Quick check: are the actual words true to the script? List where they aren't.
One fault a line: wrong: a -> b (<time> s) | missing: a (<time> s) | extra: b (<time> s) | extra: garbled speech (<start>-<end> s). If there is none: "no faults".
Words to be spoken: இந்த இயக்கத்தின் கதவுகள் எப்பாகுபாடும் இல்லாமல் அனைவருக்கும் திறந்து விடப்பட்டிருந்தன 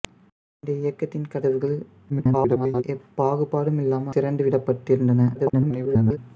extra: garbled speech (2.1-2.8 s)
missing: அனைவருக்கும் (4.2 s)
extra: garbled speech (5.3-6.2 s)